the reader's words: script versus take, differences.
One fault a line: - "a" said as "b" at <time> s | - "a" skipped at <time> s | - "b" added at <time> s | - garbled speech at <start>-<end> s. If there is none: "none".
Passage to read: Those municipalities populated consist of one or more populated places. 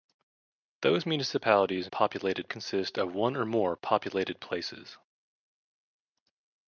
none